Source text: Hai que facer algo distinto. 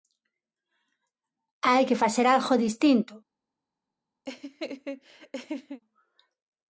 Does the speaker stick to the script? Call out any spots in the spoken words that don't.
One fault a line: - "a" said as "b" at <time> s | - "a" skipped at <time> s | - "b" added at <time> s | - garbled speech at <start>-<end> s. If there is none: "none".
none